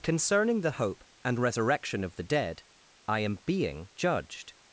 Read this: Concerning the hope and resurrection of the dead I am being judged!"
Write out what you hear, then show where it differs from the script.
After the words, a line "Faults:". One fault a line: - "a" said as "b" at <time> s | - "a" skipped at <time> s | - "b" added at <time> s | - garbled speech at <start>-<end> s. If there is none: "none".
Concerning the hope and resurrection of the dead I am being judged!"
Faults:
none